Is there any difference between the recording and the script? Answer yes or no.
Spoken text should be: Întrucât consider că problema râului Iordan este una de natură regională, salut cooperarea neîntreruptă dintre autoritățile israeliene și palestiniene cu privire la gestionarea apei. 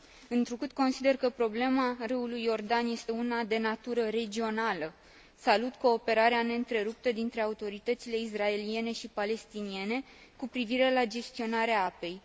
no